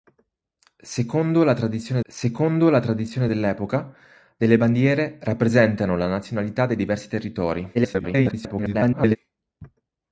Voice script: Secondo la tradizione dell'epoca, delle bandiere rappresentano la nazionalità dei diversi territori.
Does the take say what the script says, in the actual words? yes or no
no